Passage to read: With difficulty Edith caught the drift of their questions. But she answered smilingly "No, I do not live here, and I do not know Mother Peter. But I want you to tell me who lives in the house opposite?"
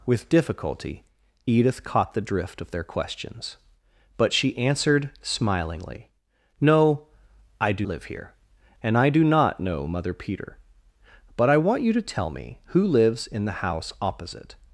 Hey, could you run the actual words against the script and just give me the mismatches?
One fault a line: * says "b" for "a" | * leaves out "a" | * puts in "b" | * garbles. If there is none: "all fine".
* leaves out "not"